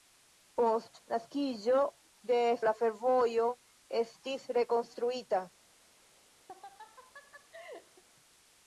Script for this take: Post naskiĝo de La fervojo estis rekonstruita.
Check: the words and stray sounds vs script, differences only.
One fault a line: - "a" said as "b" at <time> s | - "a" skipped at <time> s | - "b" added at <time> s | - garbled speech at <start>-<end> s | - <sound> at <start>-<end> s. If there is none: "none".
- laugh at 6.5-8.0 s